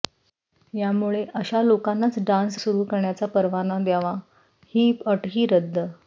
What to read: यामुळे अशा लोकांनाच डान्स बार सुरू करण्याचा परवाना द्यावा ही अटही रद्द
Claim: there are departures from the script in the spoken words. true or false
true